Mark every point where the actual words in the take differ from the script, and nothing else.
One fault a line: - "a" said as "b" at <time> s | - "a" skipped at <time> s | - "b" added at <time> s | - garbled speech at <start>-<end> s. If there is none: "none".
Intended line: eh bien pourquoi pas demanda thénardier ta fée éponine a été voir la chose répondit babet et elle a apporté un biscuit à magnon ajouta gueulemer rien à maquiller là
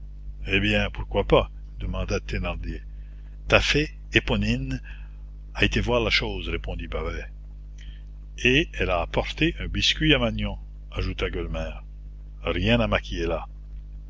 none